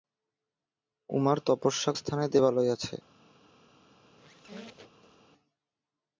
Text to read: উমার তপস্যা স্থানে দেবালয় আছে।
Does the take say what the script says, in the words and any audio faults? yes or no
no